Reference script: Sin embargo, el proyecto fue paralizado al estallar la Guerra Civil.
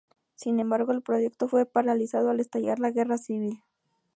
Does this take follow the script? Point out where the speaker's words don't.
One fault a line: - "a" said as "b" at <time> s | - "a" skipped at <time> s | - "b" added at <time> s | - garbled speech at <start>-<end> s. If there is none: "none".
none